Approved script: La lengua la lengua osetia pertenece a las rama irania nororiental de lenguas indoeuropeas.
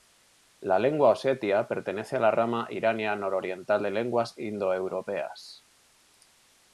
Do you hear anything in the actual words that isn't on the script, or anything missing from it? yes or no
yes